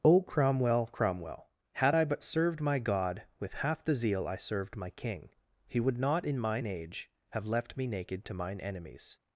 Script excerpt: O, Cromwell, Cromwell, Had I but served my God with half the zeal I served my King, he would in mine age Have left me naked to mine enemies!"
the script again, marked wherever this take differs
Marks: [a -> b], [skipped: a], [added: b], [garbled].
O, Cromwell, Cromwell, Had I but served my God with half the zeal I served my King, he would [added: not] in mine age Have left me naked to mine enemies!"